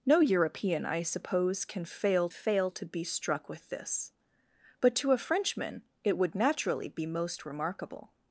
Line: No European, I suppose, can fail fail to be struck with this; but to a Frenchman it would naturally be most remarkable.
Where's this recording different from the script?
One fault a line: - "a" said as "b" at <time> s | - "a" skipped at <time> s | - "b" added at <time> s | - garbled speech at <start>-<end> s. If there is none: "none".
none